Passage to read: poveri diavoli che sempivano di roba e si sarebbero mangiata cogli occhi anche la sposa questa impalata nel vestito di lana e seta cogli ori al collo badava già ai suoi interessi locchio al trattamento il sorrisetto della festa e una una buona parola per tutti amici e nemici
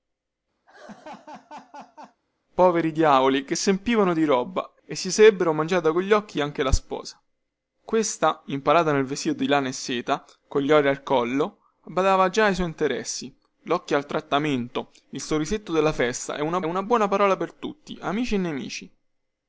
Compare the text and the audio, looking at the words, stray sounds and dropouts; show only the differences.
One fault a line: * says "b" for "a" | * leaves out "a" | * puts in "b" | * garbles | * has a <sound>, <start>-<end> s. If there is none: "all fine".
* has a laugh, 0.7-2.2 s